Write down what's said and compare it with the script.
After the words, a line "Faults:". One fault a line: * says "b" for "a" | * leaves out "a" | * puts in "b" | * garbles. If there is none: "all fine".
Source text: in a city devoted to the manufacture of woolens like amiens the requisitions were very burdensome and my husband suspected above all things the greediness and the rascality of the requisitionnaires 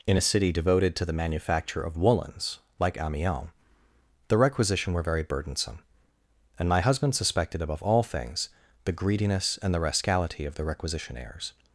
in a city devoted to the manufacture of woolens like amiens the requisition were very burdensome and my husband suspected above all things the greediness and the rascality of the requisitionnaires
Faults:
* says "requisition" for "requisitions"